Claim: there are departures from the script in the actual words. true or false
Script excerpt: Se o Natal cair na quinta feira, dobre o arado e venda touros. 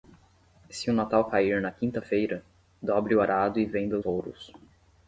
false